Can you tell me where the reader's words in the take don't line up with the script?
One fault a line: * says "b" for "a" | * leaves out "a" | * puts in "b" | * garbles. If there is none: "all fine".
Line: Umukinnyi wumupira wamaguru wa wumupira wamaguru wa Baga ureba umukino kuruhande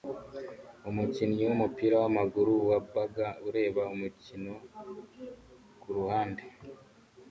* leaves out "wumupira wamaguru wa"